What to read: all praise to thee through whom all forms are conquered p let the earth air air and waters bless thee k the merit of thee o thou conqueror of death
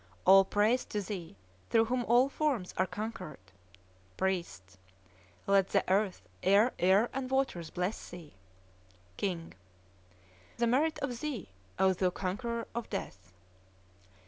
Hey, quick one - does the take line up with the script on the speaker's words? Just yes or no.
yes